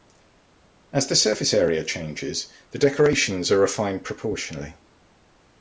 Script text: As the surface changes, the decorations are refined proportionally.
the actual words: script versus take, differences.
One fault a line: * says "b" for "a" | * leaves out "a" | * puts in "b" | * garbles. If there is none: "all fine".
* puts in "area"